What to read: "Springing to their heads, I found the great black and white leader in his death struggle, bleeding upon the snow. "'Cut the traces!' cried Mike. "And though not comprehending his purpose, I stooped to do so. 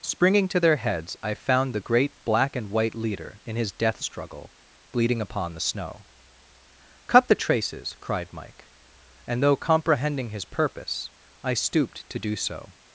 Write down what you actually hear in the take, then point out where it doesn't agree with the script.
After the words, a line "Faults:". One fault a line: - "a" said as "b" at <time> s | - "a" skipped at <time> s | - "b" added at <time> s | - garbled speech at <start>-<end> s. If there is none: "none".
"Springing to their heads, I found the great black and white leader in his death struggle, bleeding upon the snow. "'Cut the traces!' cried Mike. "And though comprehending his purpose, I stooped to do so.
Faults:
- "not" skipped at 9.6 s